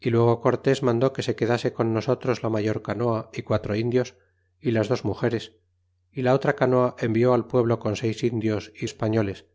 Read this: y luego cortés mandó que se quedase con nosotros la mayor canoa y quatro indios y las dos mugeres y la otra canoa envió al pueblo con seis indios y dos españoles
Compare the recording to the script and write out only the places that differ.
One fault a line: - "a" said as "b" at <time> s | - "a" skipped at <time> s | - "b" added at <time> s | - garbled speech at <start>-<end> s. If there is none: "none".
- "dos" skipped at 8.9 s